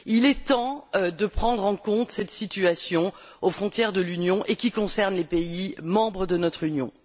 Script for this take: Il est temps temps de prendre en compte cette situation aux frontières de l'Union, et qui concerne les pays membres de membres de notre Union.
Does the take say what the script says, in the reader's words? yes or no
no